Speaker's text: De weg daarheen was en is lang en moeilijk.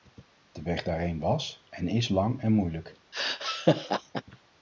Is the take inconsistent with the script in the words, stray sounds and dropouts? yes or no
yes